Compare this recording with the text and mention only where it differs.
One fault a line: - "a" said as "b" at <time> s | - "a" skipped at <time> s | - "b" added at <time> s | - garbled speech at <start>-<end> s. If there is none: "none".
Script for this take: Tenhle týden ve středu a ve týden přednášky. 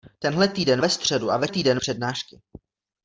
none